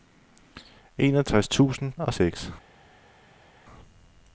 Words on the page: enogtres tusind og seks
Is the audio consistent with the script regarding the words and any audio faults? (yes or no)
yes